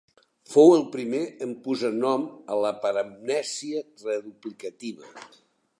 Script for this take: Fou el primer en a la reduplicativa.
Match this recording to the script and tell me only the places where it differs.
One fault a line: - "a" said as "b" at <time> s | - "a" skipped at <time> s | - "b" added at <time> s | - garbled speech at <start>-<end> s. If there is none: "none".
- "posar nom" added at 1.7 s
- "paramnèsia" added at 2.9 s